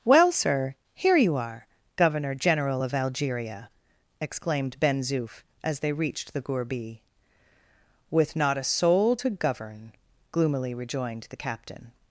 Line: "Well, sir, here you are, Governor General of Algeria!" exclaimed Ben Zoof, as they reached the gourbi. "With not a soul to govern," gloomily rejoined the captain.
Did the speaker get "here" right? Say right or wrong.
right